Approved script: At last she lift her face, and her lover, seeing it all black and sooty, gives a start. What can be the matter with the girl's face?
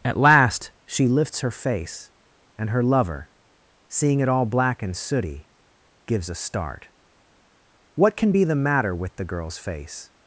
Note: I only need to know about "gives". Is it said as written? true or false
true